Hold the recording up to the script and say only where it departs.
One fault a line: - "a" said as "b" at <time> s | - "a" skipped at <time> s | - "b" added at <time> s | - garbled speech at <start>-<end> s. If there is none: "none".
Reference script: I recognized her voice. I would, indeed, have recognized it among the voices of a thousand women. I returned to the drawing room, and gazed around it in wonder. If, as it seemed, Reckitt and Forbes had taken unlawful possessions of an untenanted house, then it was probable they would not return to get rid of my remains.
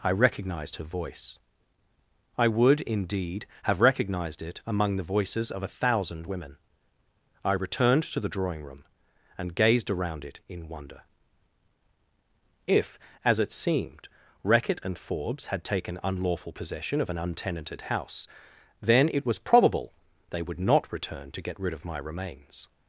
- "possessions" said as "possession" at 16.5 s